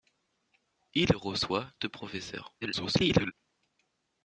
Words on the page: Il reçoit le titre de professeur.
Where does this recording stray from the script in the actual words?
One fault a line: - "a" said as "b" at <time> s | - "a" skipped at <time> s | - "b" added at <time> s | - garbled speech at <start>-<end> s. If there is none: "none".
- "le titre" skipped at 1.7 s
- garbled speech at 2.6-3.3 s